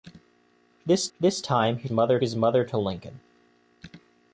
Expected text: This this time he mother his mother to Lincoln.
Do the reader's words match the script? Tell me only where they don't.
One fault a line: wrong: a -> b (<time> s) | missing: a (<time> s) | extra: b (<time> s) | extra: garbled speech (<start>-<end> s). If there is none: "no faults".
no faults